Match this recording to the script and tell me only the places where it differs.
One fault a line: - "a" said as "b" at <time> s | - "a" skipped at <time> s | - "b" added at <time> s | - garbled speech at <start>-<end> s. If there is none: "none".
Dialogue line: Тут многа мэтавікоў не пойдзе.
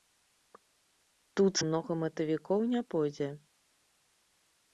none